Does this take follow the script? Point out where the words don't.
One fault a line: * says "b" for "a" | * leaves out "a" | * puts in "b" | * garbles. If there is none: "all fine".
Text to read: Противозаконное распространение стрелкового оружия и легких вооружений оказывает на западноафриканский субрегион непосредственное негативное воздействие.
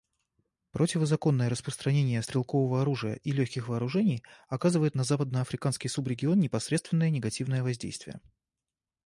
all fine